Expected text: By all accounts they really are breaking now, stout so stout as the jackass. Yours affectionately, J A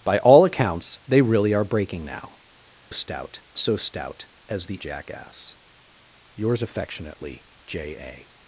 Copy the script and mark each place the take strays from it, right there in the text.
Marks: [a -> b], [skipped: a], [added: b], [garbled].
By all accounts they really are breaking now, stout so stout as the jackass. Yours affectionately, J A